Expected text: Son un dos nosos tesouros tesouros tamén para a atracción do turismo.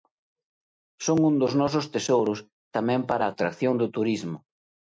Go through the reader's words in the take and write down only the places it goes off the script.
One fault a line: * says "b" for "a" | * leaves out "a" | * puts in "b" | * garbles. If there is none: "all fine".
* leaves out "tesouros"